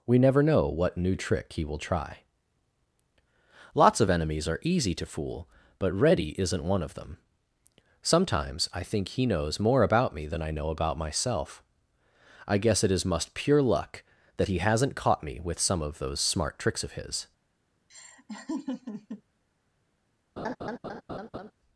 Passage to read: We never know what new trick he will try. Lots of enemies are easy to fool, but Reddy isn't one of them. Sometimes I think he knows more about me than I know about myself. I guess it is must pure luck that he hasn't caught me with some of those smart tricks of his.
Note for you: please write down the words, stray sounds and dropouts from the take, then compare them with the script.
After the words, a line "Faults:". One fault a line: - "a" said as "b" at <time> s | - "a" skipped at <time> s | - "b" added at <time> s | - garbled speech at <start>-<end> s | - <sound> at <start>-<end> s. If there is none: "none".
We never know what new trick he will try. Lots of enemies are easy to fool, but Reddy isn't one of them. Sometimes I think he knows more about me than I know about myself. I guess it is must pure luck that he hasn't caught me with some of those smart tricks of his.
Faults:
- laugh at 17.9-19.2 s
- laugh at 20.4-21.5 s